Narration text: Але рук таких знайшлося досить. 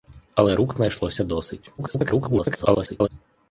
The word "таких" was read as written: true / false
false